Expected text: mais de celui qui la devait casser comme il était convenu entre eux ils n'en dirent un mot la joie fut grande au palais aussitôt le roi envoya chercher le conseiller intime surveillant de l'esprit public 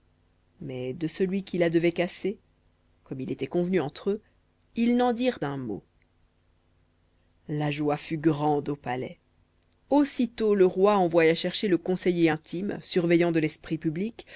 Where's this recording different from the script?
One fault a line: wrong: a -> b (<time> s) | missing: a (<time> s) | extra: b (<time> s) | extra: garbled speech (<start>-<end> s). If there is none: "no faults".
no faults